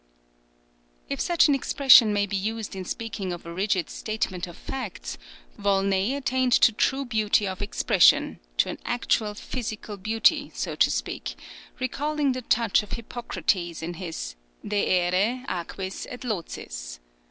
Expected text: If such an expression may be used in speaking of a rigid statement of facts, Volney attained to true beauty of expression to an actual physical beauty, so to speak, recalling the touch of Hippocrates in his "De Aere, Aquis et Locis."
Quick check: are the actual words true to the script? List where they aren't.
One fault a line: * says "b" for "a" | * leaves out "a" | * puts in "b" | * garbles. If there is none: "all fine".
all fine